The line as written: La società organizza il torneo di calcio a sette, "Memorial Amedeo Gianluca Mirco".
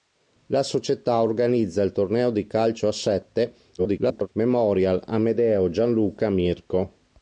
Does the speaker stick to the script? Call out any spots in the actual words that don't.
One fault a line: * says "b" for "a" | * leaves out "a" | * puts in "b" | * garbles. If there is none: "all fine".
* garbles